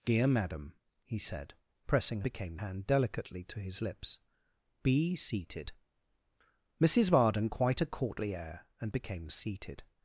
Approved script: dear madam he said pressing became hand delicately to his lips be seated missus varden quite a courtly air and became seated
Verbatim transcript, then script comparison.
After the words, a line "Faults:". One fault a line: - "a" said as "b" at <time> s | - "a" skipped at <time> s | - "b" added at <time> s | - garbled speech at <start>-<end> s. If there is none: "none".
dear madam he said pressing became hand delicately to his lips be seated missus varden quite a courtly air and became seated
Faults:
none